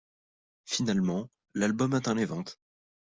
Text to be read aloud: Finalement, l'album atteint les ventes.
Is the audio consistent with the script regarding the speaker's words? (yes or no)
yes